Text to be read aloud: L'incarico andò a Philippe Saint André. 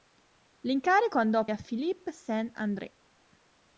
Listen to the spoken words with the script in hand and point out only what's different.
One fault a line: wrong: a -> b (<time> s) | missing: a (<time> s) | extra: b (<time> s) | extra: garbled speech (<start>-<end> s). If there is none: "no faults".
no faults